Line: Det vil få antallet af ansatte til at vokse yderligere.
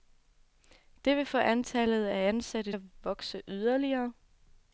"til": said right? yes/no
no